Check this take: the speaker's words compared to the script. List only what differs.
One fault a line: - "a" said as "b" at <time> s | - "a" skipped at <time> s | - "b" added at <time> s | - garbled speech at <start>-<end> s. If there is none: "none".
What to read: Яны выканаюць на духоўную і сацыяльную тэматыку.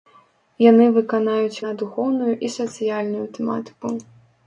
none